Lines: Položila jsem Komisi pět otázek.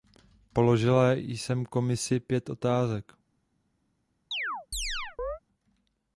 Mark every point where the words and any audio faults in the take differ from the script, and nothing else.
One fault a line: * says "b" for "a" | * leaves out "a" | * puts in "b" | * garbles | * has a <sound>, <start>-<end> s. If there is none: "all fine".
* has a chirp, 4.3-5.4 s